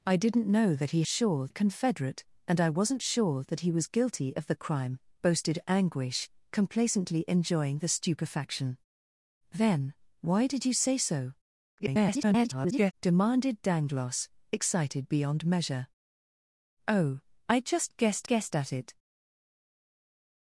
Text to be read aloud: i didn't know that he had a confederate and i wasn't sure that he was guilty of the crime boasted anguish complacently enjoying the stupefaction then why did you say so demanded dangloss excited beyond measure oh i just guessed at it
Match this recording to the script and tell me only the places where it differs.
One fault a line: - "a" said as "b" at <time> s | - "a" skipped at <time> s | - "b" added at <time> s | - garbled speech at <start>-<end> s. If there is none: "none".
- "had" said as "sure" at 1.1 s
- garbled speech at 11.8-12.9 s
- "guessed" added at 18.2 s